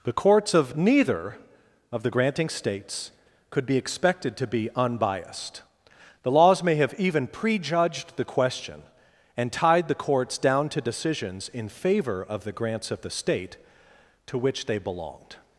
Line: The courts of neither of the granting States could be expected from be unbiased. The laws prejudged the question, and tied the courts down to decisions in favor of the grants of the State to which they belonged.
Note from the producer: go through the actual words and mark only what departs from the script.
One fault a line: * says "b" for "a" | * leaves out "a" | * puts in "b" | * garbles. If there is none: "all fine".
* says "to" for "from"
* puts in "may have even"